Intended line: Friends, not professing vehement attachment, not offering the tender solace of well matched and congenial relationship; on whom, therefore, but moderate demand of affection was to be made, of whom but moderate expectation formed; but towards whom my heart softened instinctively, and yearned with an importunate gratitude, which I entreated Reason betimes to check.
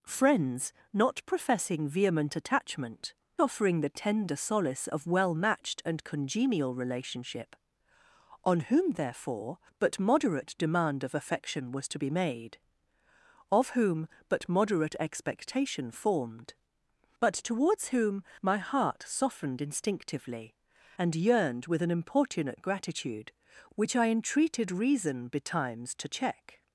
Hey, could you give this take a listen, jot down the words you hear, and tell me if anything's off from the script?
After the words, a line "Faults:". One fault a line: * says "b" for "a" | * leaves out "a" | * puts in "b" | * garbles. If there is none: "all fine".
Friends, not professing vehement attachment, offering the tender solace of well matched and congenial relationship; on whom, therefore, but moderate demand of affection was to be made, of whom but moderate expectation formed; but towards whom my heart softened instinctively, and yearned with an importunate gratitude, which I entreated Reason betimes to check.
Faults:
* leaves out "not"